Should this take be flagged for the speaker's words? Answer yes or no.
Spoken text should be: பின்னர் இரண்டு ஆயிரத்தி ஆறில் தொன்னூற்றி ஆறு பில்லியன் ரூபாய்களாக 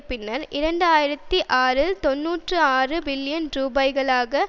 no